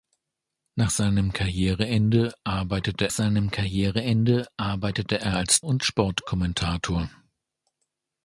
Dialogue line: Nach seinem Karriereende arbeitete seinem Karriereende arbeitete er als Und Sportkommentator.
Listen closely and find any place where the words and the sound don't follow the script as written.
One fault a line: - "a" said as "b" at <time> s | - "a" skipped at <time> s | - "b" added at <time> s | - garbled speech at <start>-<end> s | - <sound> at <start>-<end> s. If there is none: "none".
none